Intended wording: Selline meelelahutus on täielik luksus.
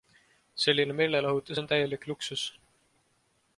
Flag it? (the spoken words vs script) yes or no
no